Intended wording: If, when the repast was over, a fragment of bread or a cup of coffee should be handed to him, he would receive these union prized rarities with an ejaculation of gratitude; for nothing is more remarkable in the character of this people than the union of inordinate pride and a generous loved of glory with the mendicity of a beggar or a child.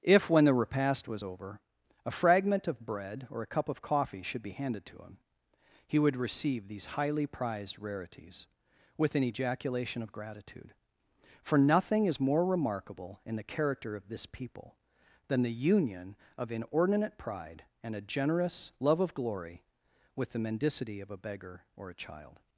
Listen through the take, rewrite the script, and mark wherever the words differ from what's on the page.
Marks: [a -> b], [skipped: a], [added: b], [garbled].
If, when the repast was over, a fragment of bread or a cup of coffee should be handed to him, he would receive these [union -> highly] prized rarities with an ejaculation of gratitude; for nothing is more remarkable in the character of this people than the union of inordinate pride and a generous [loved -> love] of glory with the mendicity of a beggar or a child.